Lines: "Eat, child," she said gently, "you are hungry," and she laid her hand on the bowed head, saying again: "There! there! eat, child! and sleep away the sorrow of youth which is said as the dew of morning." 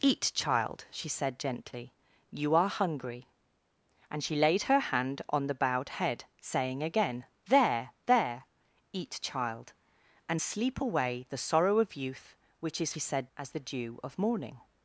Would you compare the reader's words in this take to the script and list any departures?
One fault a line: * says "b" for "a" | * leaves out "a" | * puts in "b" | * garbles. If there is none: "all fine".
all fine